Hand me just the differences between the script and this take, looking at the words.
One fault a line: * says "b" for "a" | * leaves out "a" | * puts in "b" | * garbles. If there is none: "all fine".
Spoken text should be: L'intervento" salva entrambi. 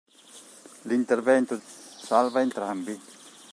all fine